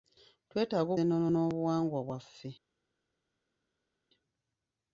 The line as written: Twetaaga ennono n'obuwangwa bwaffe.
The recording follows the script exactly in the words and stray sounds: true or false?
true